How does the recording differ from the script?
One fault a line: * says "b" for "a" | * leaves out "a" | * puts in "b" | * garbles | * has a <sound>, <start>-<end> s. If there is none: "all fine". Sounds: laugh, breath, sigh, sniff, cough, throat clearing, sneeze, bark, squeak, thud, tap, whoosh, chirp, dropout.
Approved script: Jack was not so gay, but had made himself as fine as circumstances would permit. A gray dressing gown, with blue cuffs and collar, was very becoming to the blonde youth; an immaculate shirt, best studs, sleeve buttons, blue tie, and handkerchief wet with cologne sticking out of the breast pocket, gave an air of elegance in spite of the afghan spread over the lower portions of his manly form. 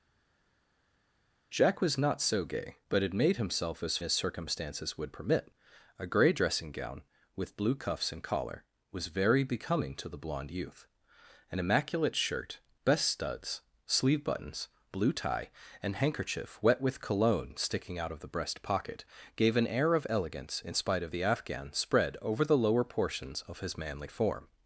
* leaves out "fine"